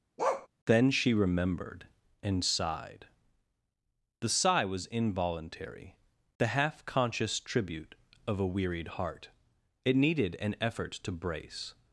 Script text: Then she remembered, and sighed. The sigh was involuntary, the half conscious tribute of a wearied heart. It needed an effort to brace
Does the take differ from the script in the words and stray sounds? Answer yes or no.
yes